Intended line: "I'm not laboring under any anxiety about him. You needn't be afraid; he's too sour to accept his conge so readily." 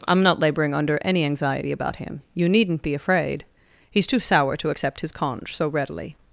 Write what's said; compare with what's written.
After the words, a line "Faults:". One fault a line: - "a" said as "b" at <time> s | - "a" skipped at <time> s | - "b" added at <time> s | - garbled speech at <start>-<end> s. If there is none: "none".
"I'm not laboring under any anxiety about him. You needn't be afraid; he's too sour to accept his conge so readily."
Faults:
none